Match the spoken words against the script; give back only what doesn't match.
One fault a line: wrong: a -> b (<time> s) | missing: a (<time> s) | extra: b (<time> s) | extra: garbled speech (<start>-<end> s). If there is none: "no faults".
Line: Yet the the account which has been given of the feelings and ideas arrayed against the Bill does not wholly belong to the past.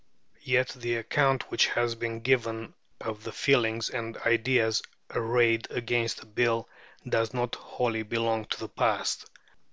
missing: the (0.9 s)